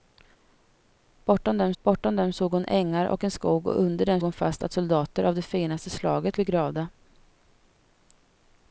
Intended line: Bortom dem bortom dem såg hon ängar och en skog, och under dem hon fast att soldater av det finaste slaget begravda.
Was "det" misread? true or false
false